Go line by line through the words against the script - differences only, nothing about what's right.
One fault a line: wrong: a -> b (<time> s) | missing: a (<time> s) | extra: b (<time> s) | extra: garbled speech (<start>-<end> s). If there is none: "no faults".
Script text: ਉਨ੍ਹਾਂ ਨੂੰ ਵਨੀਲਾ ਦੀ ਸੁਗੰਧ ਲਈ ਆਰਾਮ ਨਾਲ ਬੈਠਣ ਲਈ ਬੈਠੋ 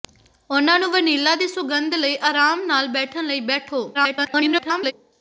extra: garbled speech (3.9-4.9 s)